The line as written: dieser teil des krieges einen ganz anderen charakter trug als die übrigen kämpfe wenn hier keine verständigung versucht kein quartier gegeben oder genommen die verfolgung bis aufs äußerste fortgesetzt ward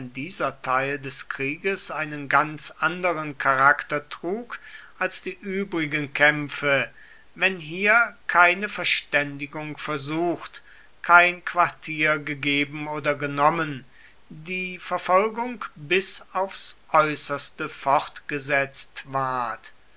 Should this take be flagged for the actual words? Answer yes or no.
no